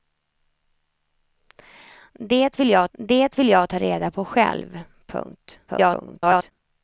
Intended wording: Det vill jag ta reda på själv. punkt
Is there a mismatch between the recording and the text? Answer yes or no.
yes